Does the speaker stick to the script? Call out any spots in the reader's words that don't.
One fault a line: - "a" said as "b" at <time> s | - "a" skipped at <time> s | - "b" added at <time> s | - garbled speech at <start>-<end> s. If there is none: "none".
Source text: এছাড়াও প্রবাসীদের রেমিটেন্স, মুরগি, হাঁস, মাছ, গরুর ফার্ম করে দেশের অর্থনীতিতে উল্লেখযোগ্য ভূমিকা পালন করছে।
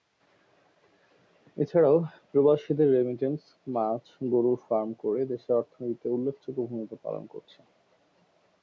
- "মুরগি হাঁস" skipped at 3.4 s